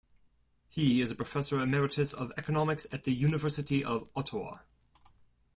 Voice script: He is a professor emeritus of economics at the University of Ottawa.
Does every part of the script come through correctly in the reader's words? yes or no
yes